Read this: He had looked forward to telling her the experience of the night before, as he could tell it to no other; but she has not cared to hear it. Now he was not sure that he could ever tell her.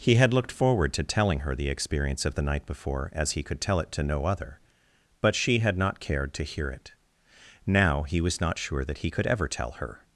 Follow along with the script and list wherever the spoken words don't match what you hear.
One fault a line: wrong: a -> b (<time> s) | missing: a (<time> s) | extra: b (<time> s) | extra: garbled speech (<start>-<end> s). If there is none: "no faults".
wrong: has -> had (5.6 s)